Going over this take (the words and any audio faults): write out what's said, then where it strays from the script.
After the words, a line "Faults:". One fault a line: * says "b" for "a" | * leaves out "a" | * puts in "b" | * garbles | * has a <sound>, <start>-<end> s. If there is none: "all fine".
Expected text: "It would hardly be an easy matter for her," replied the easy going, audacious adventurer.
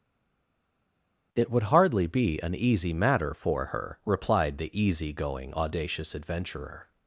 "It would hardly be an easy matter for her," replied the easy going, audacious adventurer.
Faults:
all fine